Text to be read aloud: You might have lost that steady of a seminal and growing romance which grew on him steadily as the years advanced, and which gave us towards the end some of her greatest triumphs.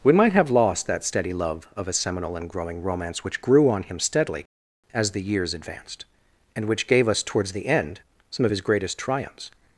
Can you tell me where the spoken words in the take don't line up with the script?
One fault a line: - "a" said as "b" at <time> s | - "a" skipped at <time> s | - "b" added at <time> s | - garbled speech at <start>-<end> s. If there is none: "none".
- "You" said as "We" at 0.0 s
- "love" added at 1.3 s
- "her" said as "his" at 8.5 s